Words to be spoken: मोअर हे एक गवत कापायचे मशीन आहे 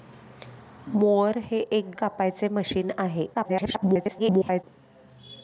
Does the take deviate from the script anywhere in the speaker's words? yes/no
yes